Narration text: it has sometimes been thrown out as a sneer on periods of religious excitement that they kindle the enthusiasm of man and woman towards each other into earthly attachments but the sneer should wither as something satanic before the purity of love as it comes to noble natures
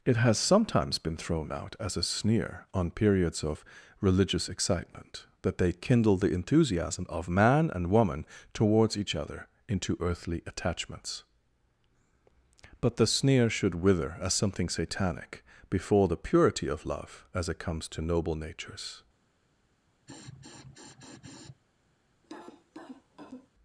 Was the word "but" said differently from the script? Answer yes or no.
no